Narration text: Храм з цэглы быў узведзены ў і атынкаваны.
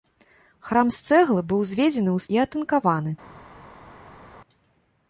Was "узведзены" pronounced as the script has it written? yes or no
yes